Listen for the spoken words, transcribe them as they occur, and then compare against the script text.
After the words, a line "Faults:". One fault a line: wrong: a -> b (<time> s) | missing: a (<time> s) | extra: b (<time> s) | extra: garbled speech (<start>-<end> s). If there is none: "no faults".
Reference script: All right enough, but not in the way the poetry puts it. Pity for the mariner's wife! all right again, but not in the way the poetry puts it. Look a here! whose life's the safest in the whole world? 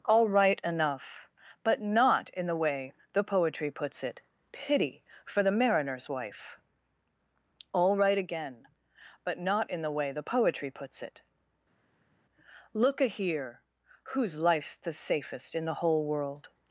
All right enough, but not in the way the poetry puts it. Pity for the mariner's wife! all right again, but not in the way the poetry puts it. Look a here! whose life's the safest in the whole world?
Faults:
no faults